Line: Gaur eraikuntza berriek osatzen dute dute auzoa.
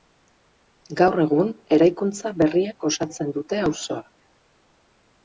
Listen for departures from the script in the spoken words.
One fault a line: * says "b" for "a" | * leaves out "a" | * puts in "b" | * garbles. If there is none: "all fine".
* puts in "egun"
* leaves out "dute"